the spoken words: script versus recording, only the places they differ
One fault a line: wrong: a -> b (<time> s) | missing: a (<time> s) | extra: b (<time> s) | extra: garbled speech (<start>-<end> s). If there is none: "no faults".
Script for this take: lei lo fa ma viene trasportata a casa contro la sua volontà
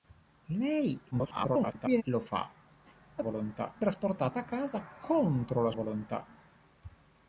extra: garbled speech (1.1-2.0 s)
wrong: viene -> volontà (3.2 s)
missing: sua (5.7 s)